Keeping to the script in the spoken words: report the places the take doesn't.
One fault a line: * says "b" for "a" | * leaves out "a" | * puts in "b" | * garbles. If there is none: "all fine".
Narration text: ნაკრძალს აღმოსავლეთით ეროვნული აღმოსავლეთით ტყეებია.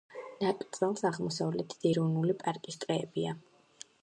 * says "პარკის" for "აღმოსავლეთით"